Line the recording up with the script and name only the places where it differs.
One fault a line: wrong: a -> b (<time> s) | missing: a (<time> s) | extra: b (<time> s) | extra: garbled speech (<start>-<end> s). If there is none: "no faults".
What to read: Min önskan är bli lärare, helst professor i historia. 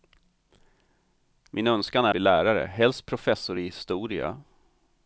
no faults